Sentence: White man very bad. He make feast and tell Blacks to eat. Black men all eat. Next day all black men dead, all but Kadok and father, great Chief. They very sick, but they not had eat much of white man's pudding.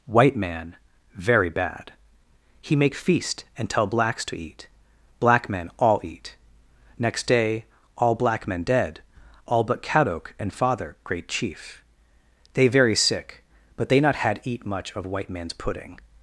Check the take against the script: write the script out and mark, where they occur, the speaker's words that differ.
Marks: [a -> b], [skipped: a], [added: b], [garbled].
White man very bad. He make feast and tell Blacks to eat. Black men all eat. Next day all black men dead, all but Kadok and father, great Chief. They very sick, but they not had eat much of white man's pudding.